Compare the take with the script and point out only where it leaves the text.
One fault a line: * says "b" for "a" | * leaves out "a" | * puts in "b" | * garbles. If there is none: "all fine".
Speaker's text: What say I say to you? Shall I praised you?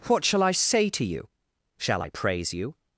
* says "shall" for "say"
* says "praise" for "praised"